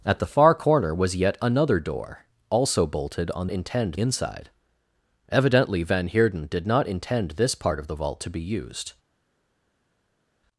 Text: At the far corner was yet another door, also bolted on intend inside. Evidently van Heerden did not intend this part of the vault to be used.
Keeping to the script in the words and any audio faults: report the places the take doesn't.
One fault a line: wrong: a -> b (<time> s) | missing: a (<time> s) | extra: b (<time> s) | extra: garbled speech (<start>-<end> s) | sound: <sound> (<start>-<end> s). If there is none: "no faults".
no faults